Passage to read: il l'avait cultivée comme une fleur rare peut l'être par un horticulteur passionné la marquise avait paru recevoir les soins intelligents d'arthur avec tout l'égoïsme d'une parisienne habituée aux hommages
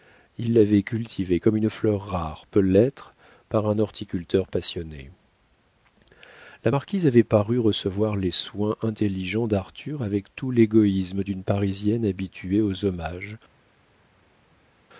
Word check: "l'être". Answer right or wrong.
right